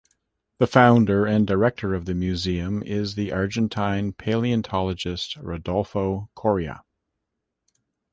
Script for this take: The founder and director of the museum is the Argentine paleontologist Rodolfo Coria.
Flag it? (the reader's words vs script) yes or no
no